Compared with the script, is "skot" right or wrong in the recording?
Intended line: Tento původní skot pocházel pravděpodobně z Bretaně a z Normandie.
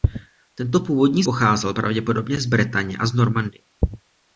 wrong